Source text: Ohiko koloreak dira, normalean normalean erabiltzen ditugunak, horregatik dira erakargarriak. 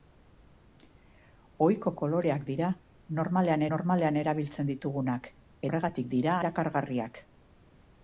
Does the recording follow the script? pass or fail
pass